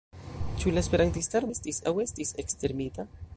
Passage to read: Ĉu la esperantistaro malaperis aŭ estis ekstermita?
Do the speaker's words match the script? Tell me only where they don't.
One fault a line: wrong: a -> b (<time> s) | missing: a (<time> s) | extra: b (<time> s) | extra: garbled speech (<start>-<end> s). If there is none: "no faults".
wrong: malaperis -> estis (1.5 s)